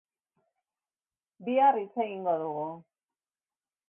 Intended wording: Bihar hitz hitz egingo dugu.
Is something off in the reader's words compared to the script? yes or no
yes